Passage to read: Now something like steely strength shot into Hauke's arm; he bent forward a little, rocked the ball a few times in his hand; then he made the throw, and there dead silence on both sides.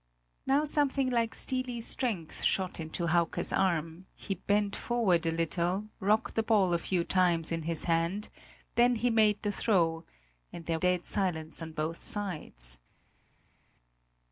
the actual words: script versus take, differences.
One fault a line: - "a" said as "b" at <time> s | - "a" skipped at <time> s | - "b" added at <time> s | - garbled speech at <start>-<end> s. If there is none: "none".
none